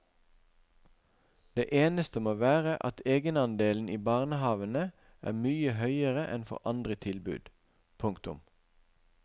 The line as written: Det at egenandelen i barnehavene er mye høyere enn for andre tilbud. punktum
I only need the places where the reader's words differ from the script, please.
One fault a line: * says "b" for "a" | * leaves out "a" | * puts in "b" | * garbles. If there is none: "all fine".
* puts in "eneste må være"